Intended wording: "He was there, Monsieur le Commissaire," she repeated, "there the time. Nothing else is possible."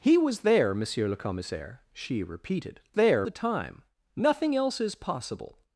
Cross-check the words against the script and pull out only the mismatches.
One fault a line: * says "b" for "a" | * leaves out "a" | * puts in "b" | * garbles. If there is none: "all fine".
all fine